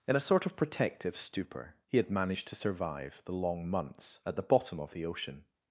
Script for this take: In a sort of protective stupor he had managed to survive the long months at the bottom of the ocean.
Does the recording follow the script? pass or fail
pass